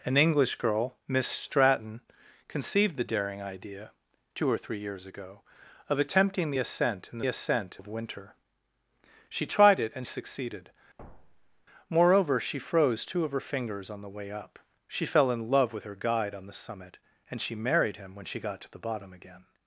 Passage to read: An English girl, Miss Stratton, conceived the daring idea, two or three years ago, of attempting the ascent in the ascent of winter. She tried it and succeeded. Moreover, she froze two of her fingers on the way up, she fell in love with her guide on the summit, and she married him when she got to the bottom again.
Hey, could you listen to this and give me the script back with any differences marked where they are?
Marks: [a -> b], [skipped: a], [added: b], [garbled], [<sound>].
An English girl, Miss Stratton, conceived the daring idea, two or three years ago, of attempting the ascent in the ascent of winter. She tried it and succeeded. [thud] Moreover, she froze two of her fingers on the way up, she fell in love with her guide on the summit, and she married him when she got to the bottom again.